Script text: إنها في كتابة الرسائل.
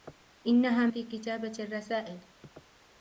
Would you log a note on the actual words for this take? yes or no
no